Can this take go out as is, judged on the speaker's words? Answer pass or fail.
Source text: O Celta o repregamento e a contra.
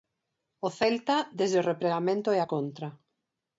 fail